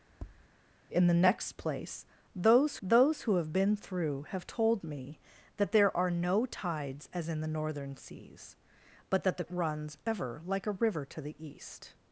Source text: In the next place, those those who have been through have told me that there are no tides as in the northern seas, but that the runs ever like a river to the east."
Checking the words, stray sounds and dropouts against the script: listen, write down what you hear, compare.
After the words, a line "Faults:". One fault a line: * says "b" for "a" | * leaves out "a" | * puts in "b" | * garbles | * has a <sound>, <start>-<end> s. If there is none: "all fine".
In the next place, those those who have been through have told me that there are no tides as in the northern seas, but that the runs ever like a river to the east."
Faults:
* has a tap, 0.1-0.5 s